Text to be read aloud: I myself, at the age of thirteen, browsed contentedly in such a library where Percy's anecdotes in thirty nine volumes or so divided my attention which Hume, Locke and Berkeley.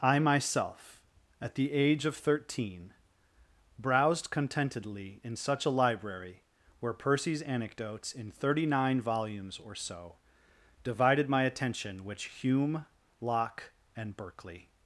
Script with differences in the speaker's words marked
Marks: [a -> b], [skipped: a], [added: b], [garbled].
I myself, at the age of thirteen, browsed contentedly in such a library where Percy's anecdotes in thirty nine volumes or so divided my attention which Hume, Locke and Berkeley.